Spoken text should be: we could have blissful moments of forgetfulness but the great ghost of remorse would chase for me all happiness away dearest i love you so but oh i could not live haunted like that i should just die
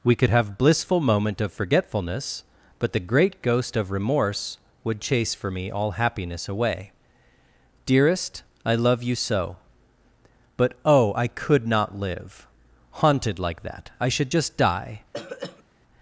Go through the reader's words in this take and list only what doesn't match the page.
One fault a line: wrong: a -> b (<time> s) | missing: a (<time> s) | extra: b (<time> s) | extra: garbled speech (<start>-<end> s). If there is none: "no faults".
wrong: moments -> moment (1.0 s)